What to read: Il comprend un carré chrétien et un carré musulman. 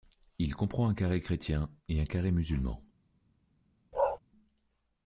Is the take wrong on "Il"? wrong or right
right